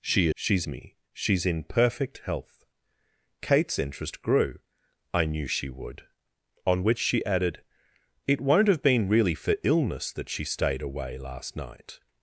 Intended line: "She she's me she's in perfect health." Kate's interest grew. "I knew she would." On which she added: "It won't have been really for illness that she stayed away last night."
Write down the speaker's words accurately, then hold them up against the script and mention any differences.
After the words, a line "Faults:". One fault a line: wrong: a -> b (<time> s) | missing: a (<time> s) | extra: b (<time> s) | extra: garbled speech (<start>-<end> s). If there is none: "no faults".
"She she's me she's in perfect health." Kate's interest grew. "I knew she would." On which she added: "It won't have been really for illness that she stayed away last night."
Faults:
no faults